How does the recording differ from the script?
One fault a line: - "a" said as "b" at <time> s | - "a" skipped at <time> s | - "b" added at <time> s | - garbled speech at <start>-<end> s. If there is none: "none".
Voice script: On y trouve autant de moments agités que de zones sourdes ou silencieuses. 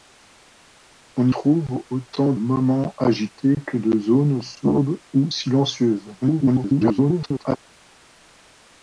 - "y" skipped at 1.3 s
- "de" skipped at 2.3 s
- garbled speech at 6.2-7.6 s